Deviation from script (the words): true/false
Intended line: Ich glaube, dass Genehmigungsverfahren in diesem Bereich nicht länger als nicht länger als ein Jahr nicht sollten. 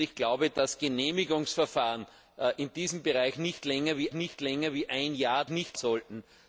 false